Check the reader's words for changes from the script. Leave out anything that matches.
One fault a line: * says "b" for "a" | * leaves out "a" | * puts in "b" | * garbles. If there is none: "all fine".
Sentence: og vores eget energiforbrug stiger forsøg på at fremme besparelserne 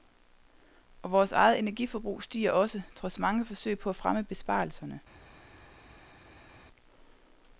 * puts in "også trods mange"